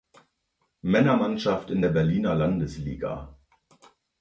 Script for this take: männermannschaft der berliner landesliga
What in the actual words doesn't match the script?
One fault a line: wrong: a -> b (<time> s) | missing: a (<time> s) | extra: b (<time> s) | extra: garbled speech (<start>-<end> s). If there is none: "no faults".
extra: in (1.7 s)